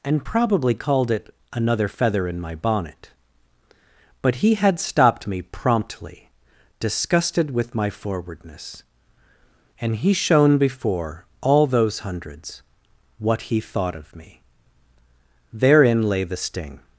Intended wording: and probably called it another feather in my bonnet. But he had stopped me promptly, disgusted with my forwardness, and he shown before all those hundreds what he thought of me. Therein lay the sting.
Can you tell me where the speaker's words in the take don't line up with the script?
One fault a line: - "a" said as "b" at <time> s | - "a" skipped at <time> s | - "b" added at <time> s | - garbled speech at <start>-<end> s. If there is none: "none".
none